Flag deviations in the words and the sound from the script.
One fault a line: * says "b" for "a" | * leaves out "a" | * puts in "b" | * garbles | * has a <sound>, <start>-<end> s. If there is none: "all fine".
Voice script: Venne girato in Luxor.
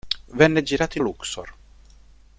all fine